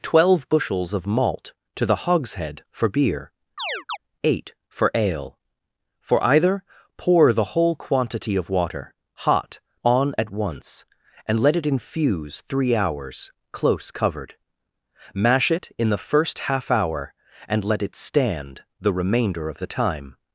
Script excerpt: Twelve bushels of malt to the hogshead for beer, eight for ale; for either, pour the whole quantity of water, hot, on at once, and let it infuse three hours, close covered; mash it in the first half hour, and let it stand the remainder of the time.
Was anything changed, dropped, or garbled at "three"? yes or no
no